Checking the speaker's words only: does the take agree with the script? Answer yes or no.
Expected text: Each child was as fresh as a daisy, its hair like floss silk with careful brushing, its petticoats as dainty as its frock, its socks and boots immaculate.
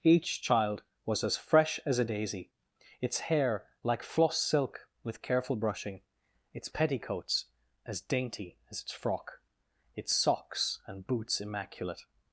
yes